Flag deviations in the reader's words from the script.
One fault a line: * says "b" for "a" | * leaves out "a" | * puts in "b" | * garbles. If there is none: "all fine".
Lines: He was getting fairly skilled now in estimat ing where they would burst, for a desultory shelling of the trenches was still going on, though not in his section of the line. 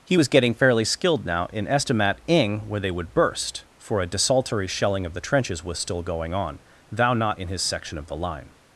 * says "thou" for "though"